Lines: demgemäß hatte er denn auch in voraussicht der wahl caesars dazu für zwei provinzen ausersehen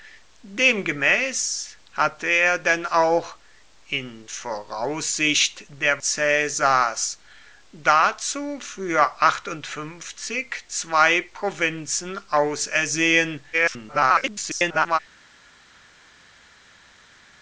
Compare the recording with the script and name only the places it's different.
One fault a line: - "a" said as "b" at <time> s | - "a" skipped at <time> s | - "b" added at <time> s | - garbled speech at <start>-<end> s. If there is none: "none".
- "wahl" skipped at 6.0 s
- garbled speech at 13.5-15.0 s